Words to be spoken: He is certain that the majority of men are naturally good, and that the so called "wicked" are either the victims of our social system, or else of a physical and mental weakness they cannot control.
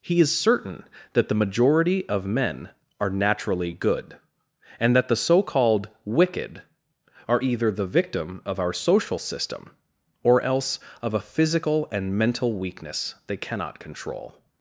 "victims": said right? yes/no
no